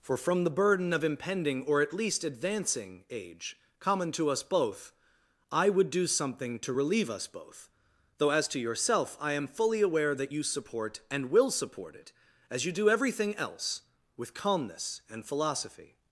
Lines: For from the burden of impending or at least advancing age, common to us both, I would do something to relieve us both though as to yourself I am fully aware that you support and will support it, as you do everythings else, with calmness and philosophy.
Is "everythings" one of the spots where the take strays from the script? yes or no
yes